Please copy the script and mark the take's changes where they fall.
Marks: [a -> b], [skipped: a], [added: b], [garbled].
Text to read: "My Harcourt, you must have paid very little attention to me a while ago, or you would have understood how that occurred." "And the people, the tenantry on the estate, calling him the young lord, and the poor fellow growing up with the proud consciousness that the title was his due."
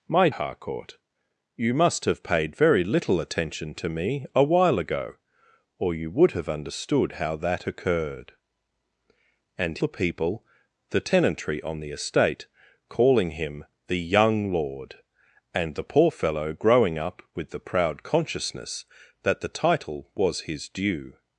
"My Harcourt, you must have paid very little attention to me a while ago, or you would have understood how that occurred." "And the people, the tenantry on the estate, calling him the young lord, and the poor fellow growing up with the proud consciousness that the title was his due."